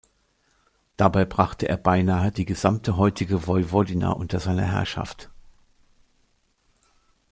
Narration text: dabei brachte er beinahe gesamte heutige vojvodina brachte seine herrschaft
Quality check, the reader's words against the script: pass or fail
fail